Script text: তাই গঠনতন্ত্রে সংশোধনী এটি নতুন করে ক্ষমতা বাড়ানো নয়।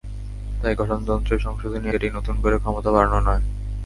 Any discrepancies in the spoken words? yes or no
no